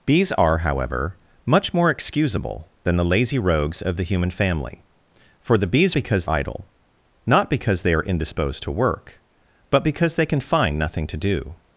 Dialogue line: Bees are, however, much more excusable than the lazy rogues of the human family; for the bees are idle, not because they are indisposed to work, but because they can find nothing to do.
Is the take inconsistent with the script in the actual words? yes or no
yes